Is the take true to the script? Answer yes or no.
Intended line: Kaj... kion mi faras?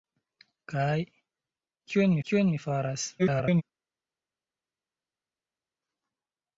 no